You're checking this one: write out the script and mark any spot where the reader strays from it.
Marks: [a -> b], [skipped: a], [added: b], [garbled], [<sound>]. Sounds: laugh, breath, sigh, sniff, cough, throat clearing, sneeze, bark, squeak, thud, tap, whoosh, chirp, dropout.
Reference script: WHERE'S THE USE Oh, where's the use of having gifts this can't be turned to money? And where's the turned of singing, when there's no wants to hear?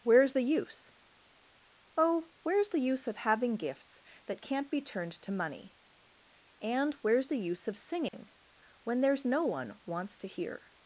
WHERE'S THE USE Oh, where's the use of having gifts [this -> that] can't be turned to money? And where's the [turned -> use] of singing, [dropout] when there's no [added: one] wants to hear?